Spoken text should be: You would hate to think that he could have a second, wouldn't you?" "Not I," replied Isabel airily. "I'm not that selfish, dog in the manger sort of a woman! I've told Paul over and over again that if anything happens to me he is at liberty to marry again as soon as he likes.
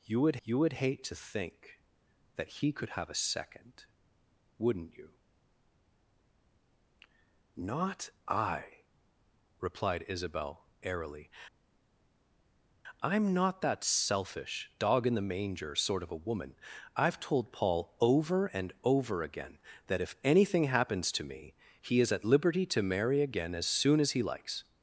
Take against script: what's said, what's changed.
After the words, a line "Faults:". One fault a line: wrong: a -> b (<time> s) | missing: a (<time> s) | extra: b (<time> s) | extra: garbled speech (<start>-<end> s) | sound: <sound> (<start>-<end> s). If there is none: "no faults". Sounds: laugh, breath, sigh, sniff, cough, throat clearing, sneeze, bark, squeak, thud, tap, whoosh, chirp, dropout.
You would you would hate to think that he could have a second, wouldn't you?" "Not I," replied Isabel airily. "I'm not that selfish, dog in the manger sort of a woman! I've told Paul over and over again that if anything happens to me he is at liberty to marry again as soon as he likes.
Faults:
extra: you would (0.4 s)